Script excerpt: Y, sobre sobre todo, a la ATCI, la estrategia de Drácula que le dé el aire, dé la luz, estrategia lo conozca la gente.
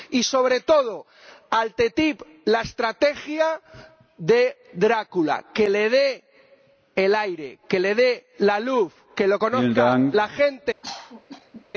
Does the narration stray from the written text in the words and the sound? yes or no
yes